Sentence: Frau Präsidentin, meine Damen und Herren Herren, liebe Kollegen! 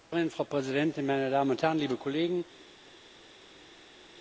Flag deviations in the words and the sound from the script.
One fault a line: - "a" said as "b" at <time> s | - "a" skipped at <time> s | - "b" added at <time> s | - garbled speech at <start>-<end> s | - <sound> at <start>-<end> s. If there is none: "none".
- "Herren" skipped at 1.8 s